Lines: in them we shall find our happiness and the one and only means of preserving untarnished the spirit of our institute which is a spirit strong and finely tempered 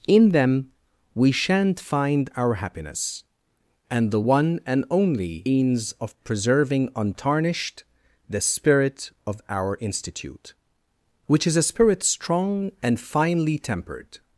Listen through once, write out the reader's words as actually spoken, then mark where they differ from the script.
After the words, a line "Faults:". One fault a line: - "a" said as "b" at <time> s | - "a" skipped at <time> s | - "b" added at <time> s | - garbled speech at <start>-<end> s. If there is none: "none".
in them we shan't find our happiness and the one and only means of preserving untarnished the spirit of our institute which is a spirit strong and finely tempered
Faults:
- "shall" said as "shan't" at 1.3 s